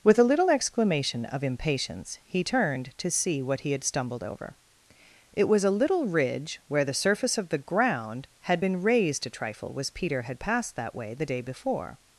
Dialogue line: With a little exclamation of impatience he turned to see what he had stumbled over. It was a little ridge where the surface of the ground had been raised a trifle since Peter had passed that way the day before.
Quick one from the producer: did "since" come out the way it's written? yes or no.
no